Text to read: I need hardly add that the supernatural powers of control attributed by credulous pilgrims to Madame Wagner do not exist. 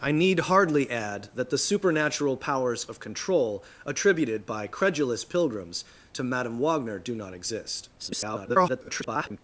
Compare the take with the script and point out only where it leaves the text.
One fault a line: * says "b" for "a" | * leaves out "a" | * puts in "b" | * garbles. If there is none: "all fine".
* garbles